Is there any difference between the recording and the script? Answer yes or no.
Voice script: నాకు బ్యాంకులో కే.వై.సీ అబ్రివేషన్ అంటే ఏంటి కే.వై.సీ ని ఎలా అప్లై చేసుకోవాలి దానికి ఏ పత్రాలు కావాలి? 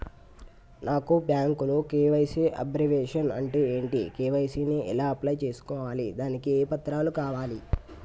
no